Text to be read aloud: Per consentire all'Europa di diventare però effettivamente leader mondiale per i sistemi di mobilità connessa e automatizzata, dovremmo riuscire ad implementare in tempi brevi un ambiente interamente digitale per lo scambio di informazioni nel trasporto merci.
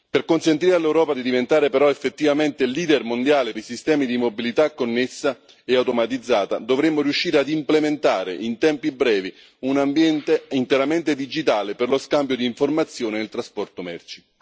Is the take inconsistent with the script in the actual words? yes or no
yes